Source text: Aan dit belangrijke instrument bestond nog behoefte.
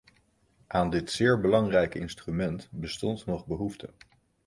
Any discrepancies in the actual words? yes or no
yes